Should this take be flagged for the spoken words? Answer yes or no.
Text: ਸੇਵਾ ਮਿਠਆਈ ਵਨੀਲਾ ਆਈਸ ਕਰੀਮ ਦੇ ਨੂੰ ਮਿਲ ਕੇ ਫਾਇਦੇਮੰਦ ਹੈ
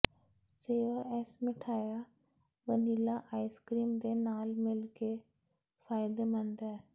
yes